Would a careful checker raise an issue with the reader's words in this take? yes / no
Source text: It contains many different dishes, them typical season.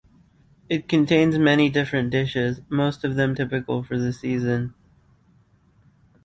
yes